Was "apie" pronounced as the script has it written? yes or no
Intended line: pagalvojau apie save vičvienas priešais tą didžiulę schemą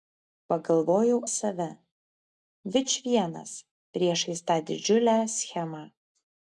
no